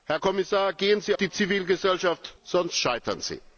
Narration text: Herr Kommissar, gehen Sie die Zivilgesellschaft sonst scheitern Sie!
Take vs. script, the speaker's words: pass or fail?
pass